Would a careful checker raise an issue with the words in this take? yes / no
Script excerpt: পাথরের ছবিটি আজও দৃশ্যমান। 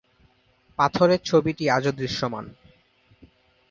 no